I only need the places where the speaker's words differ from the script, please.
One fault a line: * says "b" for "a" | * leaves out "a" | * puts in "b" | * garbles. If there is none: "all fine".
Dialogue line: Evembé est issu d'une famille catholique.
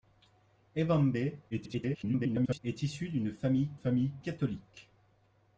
* garbles
* puts in "famille"